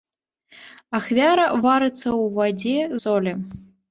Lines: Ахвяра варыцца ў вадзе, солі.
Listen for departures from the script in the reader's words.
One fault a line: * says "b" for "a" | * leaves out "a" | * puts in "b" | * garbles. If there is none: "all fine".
all fine